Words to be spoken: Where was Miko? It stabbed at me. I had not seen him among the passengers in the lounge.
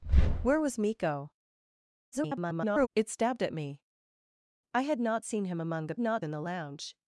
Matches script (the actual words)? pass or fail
fail